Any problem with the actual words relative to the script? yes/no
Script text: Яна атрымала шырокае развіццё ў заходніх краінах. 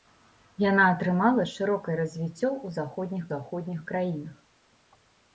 yes